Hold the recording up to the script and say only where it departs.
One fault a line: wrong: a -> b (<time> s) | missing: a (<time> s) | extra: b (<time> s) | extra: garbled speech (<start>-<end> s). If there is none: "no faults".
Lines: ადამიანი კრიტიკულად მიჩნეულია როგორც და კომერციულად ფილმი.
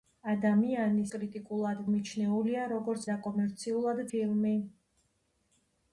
no faults